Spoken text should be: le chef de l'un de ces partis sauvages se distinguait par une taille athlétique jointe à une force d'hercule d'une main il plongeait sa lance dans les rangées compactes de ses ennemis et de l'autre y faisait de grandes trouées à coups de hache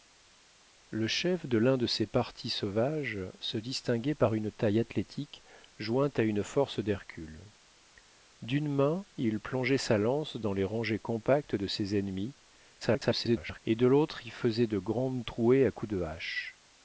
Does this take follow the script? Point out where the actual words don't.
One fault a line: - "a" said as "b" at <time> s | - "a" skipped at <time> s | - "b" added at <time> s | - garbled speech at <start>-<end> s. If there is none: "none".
- garbled speech at 12.8-13.6 s